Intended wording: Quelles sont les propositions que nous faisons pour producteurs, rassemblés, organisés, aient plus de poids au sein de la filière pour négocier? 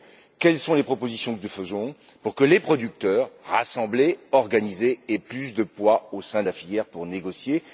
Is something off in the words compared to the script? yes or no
yes